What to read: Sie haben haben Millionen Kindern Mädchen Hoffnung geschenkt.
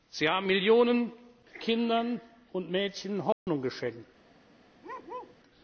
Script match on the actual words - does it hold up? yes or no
no